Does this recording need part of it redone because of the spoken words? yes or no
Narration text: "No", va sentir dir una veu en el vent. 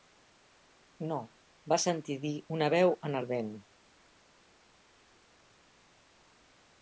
no